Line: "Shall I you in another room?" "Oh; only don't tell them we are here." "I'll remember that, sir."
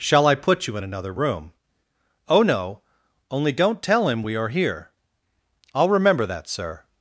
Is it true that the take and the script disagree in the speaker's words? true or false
true